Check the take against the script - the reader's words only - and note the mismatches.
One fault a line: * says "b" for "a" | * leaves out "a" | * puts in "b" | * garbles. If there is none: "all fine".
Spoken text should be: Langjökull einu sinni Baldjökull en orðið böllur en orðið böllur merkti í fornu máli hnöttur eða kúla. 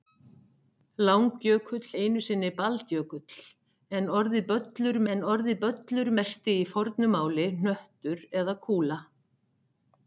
all fine